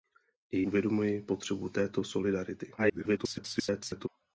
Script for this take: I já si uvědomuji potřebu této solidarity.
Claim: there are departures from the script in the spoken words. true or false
true